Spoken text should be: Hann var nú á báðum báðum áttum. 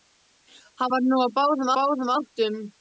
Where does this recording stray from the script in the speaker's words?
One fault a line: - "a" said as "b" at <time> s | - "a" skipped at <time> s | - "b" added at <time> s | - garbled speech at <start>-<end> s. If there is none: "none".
none